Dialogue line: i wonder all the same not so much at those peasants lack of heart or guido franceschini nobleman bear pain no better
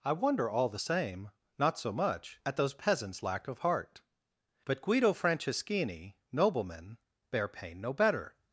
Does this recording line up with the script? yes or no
no